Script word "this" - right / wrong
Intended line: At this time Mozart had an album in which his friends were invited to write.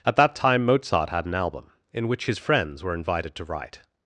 wrong